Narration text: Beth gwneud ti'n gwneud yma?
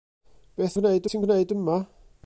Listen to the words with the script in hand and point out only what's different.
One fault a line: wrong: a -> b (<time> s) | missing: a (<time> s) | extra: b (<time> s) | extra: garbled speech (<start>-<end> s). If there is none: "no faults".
no faults